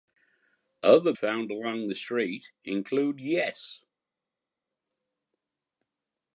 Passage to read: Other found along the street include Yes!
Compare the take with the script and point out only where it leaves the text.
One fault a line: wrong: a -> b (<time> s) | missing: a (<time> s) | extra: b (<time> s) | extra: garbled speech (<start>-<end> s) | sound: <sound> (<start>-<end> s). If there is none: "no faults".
no faults